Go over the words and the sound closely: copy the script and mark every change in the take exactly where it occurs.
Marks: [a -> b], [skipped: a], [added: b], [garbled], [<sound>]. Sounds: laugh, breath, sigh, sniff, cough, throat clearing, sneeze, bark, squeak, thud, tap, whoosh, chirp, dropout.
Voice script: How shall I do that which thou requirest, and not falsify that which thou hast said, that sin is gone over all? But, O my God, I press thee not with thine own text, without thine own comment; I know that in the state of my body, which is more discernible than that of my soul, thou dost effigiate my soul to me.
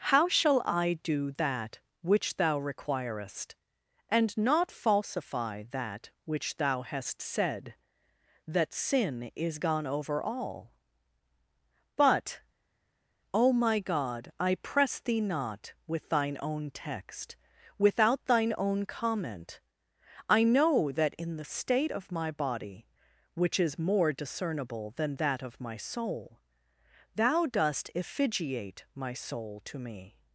How shall I do that which thou requirest, and not falsify that which thou hast said, that sin is gone over all? But, O my God, I press thee not with thine own text, without thine own comment; I know that in the state of my body, which is more discernible than that of my soul, thou dost effigiate my soul to me.